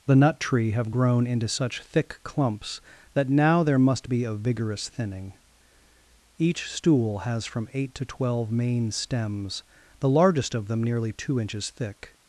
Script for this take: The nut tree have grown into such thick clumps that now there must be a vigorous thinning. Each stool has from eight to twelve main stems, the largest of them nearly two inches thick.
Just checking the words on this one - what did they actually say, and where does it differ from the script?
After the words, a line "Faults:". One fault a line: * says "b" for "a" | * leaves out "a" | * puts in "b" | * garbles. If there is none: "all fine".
The nut tree have grown into such thick clumps that now there must be a vigorous thinning. Each stool has from eight to twelve main stems, the largest of them nearly two inches thick.
Faults:
all fine